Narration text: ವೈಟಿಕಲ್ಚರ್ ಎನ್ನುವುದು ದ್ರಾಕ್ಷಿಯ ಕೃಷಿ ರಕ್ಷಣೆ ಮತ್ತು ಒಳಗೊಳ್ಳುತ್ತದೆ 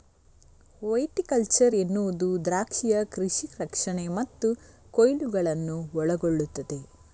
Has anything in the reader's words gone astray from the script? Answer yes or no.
yes